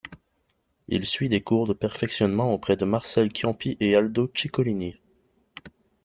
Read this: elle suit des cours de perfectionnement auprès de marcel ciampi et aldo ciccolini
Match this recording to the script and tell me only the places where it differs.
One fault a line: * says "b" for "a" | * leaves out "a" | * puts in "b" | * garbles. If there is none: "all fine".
* says "il" for "elle"